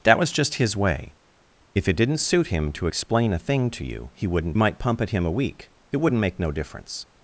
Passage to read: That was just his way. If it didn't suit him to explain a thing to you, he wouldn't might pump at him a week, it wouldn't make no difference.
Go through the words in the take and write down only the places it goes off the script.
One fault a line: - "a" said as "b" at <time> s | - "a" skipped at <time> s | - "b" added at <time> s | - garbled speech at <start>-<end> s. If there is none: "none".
none